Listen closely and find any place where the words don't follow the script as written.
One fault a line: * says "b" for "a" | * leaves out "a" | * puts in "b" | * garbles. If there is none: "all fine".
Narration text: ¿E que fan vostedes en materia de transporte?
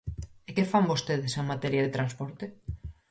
all fine